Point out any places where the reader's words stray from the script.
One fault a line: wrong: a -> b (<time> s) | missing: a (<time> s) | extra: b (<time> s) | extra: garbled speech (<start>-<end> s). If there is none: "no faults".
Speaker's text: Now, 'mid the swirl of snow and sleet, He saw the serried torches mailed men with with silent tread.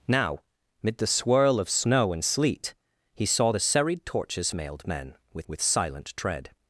no faults